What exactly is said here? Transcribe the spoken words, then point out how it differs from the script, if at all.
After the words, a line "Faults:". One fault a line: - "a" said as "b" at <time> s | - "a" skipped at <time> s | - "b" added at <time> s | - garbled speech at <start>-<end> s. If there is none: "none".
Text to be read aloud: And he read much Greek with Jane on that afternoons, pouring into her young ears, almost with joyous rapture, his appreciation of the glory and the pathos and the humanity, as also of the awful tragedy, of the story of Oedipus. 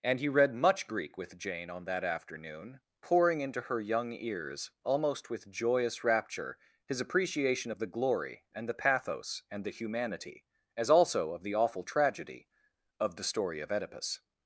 And he read much Greek with Jane on that afternoon, pouring into her young ears, almost with joyous rapture, his appreciation of the glory and the pathos and the humanity, as also of the awful tragedy, of the story of Oedipus.
Faults:
- "afternoons" said as "afternoon" at 2.0 s